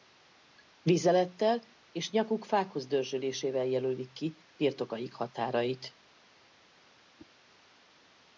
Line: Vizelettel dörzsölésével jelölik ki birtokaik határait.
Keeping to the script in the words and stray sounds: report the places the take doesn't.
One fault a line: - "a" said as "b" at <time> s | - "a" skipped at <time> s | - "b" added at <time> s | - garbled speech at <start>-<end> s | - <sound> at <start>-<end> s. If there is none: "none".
- "és nyakuk fákhoz" added at 1.9 s
- whoosh at 7.2-7.3 s